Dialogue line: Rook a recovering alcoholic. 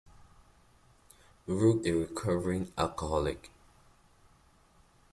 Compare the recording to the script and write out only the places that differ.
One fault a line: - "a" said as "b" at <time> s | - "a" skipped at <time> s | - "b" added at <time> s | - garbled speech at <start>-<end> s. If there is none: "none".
none